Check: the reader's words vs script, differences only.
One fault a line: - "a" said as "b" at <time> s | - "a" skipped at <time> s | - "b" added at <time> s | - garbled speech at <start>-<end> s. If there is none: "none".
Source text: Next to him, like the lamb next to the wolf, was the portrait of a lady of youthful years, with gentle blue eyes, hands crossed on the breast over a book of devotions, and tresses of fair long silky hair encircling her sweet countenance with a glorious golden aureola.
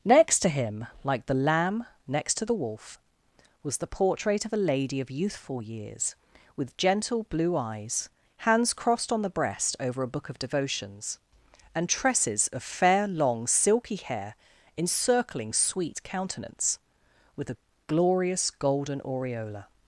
- "her" skipped at 15.5 s